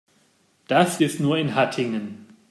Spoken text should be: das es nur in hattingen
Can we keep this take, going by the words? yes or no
yes